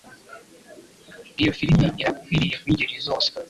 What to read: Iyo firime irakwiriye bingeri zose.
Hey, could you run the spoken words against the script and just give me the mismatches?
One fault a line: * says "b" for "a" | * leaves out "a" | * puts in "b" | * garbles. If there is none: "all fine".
all fine